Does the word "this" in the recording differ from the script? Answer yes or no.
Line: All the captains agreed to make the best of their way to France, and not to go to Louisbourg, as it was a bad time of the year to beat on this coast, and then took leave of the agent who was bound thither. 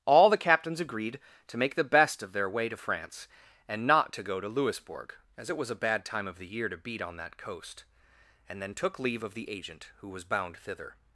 yes